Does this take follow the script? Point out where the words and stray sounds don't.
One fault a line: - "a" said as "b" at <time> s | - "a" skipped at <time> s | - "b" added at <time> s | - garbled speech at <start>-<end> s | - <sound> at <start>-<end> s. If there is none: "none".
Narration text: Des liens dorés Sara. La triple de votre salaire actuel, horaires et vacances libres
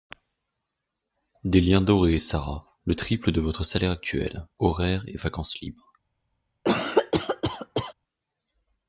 - "La" said as "Le" at 2.9 s
- cough at 6.6-7.9 s